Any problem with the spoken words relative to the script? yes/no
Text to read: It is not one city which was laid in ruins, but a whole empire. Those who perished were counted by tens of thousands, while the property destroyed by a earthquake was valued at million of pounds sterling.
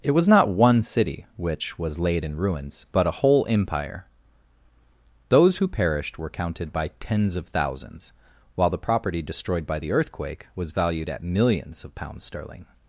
yes